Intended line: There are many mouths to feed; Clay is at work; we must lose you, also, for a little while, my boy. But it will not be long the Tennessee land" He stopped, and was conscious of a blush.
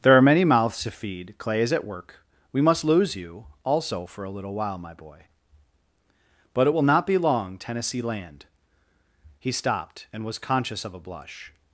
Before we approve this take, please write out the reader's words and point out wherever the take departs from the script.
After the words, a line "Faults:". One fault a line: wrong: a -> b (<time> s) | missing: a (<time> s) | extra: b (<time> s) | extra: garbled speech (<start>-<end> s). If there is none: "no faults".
There are many mouths to feed; Clay is at work; we must lose you, also, for a little while, my boy. But it will not be long Tennessee land" He stopped, and was conscious of a blush.
Faults:
missing: the (7.6 s)